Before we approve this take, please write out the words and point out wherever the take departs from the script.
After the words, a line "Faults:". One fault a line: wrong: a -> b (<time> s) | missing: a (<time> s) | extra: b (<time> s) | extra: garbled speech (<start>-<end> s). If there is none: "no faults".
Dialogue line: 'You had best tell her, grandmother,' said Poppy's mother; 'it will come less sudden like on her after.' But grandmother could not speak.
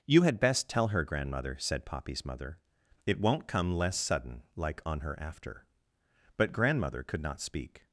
'You had best tell her, grandmother,' said Poppy's mother; 'it won't come less sudden like on her after.' But grandmother could not speak.
Faults:
wrong: will -> won't (3.2 s)